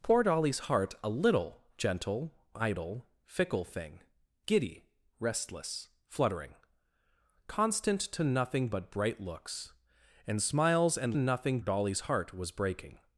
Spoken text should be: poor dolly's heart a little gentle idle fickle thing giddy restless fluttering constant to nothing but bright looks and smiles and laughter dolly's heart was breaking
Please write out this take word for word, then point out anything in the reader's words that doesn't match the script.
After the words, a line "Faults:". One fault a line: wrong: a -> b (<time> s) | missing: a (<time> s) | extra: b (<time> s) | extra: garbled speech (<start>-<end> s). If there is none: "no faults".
poor dolly's heart a little gentle idle fickle thing giddy restless fluttering constant to nothing but bright looks and smiles and nothing dolly's heart was breaking
Faults:
wrong: laughter -> nothing (11.1 s)